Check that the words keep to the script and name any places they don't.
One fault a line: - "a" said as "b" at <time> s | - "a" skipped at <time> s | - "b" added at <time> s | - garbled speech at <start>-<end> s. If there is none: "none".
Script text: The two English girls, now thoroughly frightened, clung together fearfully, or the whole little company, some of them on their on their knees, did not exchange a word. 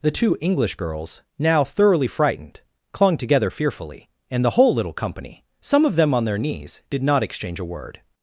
- "or" said as "and" at 4.3 s
- "on their" skipped at 6.4 s